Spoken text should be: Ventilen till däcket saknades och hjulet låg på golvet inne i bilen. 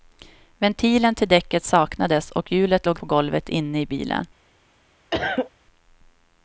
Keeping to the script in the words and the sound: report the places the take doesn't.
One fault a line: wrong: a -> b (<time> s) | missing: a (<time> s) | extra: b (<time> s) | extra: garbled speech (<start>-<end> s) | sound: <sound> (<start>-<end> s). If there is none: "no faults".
sound: cough (5.1-5.5 s)